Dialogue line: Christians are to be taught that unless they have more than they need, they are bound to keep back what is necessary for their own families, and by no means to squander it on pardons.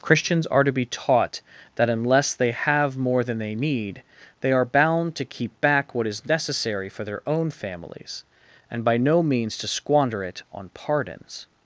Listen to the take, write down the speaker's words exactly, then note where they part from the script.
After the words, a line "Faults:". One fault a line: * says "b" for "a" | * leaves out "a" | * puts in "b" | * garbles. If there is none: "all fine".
Christians are to be taught that unless they have more than they need, they are bound to keep back what is necessary for their own families, and by no means to squander it on pardons.
Faults:
all fine